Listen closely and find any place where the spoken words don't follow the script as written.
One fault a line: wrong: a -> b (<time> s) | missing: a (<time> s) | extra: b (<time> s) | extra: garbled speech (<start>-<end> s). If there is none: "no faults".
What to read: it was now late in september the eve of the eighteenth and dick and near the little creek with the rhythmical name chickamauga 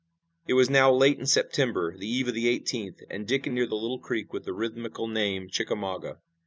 no faults